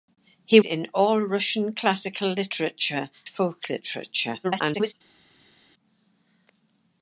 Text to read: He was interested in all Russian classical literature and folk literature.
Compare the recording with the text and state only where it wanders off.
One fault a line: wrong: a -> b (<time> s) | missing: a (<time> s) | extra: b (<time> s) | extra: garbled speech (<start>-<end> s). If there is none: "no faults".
missing: was interested (0.6 s)
missing: and (3.1 s)
extra: garbled speech (4.4-4.9 s)